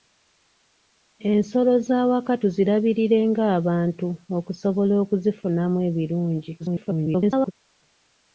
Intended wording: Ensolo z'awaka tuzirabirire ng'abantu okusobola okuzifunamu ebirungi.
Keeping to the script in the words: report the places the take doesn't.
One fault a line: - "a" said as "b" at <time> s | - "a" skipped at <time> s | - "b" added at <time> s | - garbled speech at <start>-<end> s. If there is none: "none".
- garbled speech at 6.6-7.5 s